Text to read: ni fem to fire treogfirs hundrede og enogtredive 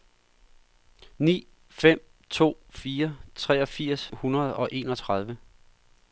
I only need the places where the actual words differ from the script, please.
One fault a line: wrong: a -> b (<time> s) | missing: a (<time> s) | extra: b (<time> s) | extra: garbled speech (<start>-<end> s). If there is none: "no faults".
no faults